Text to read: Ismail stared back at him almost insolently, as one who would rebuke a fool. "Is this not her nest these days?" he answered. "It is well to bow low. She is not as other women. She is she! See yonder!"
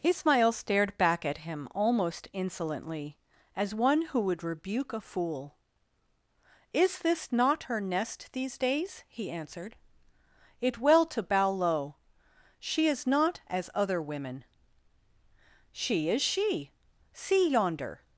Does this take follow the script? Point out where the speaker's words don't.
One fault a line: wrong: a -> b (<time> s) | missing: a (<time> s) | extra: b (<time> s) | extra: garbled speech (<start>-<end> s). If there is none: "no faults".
missing: is (10.8 s)